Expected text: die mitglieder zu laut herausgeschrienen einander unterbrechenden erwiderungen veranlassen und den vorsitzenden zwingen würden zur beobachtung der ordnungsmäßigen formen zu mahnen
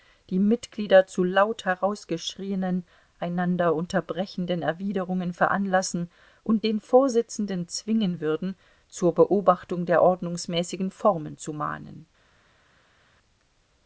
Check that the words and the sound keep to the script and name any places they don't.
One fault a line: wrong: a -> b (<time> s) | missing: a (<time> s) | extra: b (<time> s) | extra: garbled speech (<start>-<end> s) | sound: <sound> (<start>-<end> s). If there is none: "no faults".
no faults